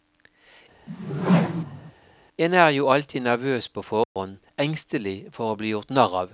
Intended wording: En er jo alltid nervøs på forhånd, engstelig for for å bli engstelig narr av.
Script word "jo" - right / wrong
right